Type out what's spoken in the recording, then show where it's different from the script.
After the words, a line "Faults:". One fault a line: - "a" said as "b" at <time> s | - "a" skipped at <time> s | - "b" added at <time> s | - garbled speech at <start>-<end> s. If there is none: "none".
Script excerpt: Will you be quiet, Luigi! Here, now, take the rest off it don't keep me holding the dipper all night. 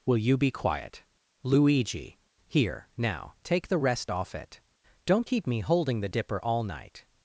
Will you be quiet, Luigi! Here, now, take the rest off it don't keep me holding the dipper all night.
Faults:
none